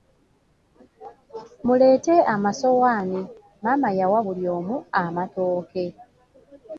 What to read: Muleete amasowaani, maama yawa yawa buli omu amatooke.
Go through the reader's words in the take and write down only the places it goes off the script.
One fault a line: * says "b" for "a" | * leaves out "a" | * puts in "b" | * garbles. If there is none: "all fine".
* leaves out "yawa"